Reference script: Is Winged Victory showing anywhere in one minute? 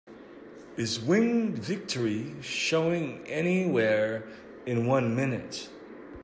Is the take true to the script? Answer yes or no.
yes